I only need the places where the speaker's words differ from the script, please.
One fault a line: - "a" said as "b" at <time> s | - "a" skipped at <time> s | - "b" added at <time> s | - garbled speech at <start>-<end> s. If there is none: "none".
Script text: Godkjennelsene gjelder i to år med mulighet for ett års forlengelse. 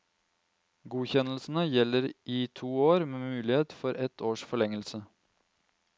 none